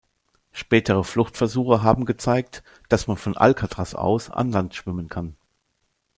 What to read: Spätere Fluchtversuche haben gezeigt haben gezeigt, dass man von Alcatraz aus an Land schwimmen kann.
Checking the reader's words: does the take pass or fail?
fail